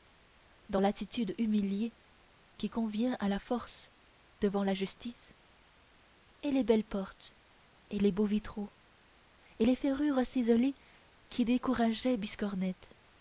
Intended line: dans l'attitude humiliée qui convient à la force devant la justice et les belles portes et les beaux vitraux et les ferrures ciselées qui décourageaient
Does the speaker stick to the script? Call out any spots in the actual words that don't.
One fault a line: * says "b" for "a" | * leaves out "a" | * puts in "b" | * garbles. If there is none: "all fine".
all fine